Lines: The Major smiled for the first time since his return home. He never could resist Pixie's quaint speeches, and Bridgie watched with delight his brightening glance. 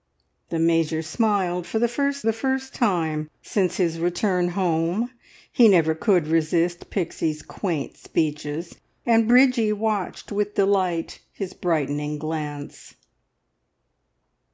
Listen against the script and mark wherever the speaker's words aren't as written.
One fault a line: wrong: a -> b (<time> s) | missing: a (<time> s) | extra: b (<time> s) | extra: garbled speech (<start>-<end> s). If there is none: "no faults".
extra: the first (2.2 s)